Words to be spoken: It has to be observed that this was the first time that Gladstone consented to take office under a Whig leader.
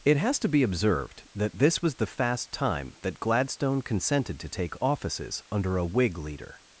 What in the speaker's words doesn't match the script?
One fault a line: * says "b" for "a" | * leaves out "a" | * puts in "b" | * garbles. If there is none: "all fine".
* says "fast" for "first"
* says "offices" for "office"